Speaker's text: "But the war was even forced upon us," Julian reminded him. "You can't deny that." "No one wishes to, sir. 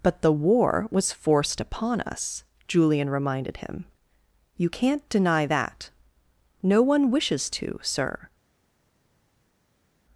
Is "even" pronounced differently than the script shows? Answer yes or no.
yes